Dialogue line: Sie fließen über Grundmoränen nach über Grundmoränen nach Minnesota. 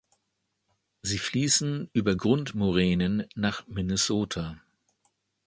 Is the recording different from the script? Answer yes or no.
yes